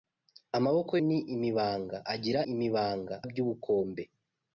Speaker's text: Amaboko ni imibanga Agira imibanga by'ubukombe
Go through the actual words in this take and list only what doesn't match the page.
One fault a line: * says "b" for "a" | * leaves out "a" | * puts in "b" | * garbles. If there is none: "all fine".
all fine